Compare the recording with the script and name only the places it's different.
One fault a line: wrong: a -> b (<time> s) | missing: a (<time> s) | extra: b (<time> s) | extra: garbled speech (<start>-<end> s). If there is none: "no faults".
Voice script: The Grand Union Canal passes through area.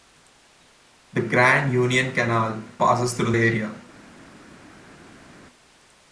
no faults